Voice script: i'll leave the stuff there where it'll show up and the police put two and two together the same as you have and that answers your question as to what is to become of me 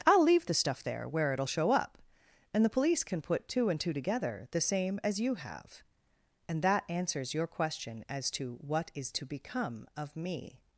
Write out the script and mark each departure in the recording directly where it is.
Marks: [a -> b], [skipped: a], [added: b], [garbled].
i'll leave the stuff there where it'll show up and the police [added: can] put two and two together the same as you have and that answers your question as to what is to become of me